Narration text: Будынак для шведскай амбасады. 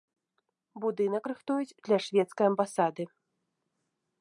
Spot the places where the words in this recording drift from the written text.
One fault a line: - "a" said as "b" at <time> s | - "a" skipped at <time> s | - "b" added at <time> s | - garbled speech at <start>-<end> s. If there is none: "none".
- "рыхтуюць" added at 1.3 s